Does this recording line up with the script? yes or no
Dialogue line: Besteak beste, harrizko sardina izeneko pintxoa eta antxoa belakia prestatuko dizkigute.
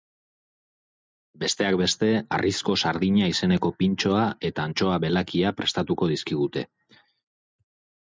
yes